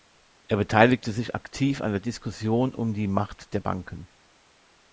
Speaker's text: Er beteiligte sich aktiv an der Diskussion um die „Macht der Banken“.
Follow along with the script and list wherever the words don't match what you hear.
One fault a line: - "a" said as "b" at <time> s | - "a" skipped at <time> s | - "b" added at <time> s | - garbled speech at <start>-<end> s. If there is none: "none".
none